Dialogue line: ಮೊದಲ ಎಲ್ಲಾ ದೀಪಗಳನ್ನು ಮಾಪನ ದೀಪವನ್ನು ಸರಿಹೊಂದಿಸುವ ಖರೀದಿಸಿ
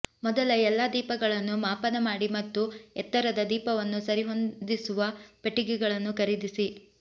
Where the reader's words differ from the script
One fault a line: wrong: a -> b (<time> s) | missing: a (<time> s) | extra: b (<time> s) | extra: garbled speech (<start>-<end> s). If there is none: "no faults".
extra: ಮಾಡಿ ಮತ್ತು ಎತ್ತರದ (2.0 s)
extra: ಪೆಟ್ಟಿಗೆಗಳನ್ನು (5.4 s)